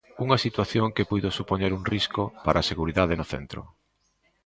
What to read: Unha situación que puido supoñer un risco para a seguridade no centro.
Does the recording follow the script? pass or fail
pass